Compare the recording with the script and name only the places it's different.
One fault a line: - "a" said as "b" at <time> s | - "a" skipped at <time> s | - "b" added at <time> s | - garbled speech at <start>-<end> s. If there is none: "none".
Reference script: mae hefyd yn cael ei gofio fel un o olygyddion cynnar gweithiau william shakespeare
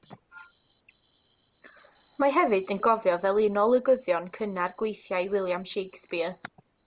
- "cael" skipped at 2.8 s